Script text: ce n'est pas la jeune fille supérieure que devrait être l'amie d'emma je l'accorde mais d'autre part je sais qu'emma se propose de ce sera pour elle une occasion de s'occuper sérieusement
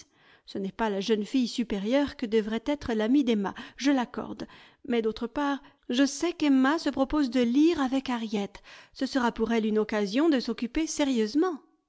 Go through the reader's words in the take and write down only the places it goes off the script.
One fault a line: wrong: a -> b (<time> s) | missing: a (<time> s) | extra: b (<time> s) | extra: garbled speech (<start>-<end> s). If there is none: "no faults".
extra: lire avec harriet (7.4 s)